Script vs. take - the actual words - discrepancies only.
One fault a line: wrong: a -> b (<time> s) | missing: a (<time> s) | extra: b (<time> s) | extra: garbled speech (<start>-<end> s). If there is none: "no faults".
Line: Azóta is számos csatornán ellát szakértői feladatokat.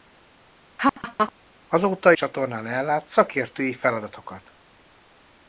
missing: is számos (2.1 s)